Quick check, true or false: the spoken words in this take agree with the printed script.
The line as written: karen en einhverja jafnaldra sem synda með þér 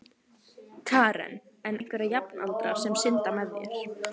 true